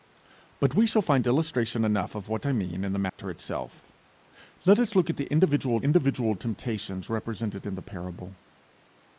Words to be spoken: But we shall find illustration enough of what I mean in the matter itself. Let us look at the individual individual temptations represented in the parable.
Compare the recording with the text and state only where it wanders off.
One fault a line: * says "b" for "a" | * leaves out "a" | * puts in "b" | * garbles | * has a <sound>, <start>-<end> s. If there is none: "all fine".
* has a dropout, 3.1-3.2 s